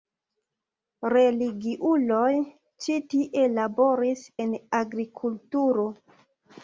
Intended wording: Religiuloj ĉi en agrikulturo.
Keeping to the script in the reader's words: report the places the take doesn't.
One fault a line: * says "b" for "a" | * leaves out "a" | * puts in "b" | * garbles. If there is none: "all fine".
* puts in "tie laboris"